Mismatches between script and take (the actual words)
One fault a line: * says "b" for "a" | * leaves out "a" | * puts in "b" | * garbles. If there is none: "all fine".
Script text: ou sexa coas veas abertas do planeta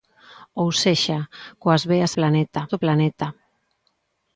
* says "planeta" for "abertas"